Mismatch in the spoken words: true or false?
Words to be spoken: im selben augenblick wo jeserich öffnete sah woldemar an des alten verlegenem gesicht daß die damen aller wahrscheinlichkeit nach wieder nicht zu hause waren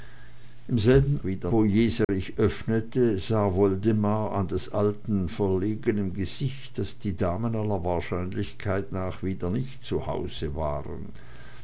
true